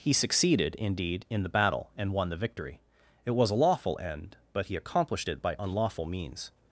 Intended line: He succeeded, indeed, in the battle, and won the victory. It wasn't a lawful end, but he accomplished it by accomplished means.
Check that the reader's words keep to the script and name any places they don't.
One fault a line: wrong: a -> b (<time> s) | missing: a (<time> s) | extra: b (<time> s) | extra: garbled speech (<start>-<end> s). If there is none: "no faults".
wrong: wasn't -> was (3.3 s)
wrong: accomplished -> unlawful (5.6 s)